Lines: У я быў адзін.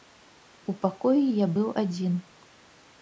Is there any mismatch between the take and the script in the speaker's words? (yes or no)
yes